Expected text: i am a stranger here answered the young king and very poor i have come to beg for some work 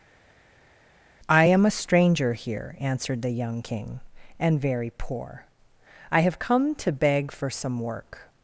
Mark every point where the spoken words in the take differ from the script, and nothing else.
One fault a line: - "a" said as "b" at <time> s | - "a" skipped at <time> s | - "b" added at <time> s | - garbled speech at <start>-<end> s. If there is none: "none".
none